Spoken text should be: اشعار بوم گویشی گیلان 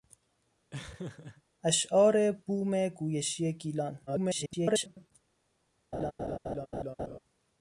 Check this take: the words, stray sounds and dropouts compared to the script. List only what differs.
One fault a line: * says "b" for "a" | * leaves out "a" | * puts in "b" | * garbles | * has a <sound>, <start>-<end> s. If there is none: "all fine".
* has a laugh, 0.7-1.4 s
* garbles
* has a laugh, 5.9-7.2 s